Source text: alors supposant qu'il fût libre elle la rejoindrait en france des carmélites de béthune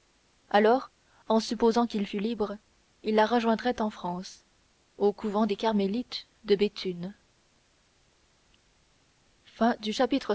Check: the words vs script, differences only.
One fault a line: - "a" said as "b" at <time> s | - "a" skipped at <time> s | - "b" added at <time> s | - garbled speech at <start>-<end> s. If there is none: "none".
- "en" added at 1.3 s
- "elle" said as "il" at 3.0 s
- "au couvent" added at 5.0 s